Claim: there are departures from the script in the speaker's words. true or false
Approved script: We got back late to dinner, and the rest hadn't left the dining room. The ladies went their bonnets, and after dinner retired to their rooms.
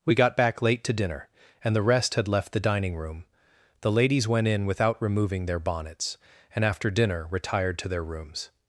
true